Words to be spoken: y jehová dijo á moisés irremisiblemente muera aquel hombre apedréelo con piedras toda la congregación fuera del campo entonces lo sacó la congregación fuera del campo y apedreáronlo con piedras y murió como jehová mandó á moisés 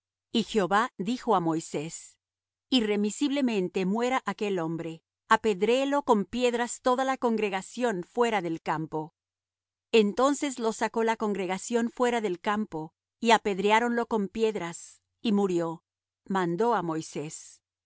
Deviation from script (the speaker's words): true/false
true